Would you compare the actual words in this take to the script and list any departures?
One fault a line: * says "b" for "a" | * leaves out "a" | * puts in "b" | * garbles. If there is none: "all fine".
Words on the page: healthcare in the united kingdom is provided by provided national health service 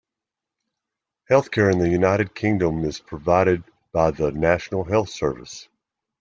* says "the" for "provided"